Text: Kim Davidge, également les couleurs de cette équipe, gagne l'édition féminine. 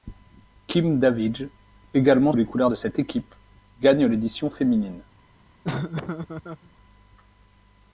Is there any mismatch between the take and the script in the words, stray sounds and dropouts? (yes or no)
yes